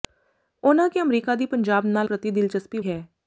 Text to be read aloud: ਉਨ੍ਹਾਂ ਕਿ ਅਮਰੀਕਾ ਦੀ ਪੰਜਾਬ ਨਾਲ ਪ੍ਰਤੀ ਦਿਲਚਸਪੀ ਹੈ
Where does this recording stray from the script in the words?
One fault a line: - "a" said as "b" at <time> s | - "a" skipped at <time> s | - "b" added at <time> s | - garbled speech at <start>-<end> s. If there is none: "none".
none